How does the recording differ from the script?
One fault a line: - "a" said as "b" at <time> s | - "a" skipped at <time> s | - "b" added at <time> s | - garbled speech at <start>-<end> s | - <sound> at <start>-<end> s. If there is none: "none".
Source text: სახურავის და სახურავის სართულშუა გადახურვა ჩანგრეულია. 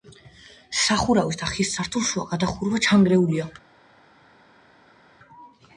- "სახურავის" said as "ხის" at 1.5 s